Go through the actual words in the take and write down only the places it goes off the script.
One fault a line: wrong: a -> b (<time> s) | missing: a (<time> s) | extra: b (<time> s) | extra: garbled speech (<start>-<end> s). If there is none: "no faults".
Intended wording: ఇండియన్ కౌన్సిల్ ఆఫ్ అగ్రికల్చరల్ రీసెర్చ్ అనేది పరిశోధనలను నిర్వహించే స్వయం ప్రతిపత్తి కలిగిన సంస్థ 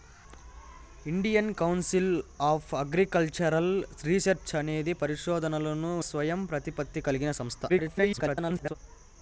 missing: నిర్వహించే (5.9 s)
extra: garbled speech (7.7-8.8 s)